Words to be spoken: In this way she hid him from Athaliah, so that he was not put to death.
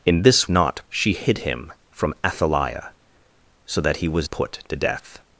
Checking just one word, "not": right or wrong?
wrong